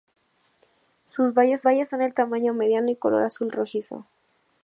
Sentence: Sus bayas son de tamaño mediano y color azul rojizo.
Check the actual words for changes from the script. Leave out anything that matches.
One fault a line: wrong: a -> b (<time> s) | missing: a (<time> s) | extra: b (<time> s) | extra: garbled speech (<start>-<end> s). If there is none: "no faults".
extra: bayas (1.6 s)